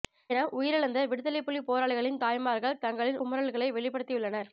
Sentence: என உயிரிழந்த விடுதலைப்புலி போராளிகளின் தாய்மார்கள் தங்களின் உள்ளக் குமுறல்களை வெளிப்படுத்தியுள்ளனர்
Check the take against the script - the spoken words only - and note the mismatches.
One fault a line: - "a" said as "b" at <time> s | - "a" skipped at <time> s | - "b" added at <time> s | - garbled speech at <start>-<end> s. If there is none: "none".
- "உள்ளக்" skipped at 3.2 s